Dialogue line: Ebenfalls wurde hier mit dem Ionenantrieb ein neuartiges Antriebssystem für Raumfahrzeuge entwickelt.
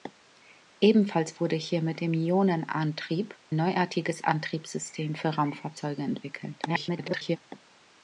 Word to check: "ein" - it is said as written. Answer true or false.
false